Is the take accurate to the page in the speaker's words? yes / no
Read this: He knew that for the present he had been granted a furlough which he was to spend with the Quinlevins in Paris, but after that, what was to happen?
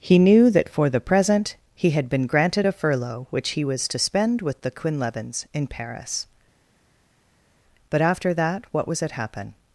no